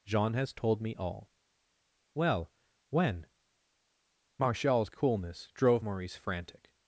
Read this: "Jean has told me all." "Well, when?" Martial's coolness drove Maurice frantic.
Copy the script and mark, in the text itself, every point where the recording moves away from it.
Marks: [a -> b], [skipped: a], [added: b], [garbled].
"Jean has told me all." "Well, when?" Martial's coolness drove Maurice frantic.